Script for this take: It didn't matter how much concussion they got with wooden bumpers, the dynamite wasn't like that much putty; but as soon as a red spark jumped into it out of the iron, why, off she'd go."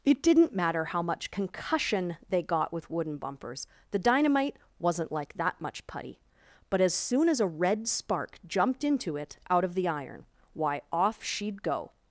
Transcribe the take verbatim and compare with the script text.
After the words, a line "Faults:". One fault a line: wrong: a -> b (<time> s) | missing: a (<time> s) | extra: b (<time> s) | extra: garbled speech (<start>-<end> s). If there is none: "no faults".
It didn't matter how much concussion they got with wooden bumpers, the dynamite wasn't like that much putty; but as soon as a red spark jumped into it out of the iron, why, off she'd go."
Faults:
no faults